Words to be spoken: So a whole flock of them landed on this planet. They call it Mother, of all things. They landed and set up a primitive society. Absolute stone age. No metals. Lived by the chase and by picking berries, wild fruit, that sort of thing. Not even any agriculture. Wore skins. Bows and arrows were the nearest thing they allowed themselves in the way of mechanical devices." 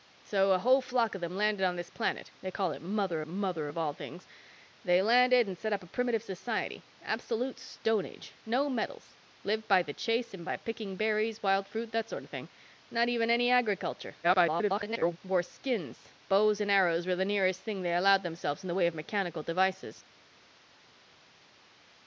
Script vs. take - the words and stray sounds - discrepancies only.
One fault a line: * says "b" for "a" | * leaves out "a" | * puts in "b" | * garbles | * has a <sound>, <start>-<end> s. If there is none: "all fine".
* puts in "Mother"
* garbles